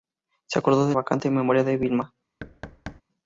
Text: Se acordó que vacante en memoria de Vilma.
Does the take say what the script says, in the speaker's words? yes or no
yes